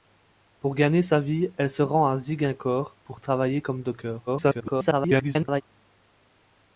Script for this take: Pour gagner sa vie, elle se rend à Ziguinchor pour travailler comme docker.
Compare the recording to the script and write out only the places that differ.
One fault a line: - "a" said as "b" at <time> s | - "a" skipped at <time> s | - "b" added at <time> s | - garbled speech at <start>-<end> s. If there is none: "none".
- garbled speech at 4.3-5.6 s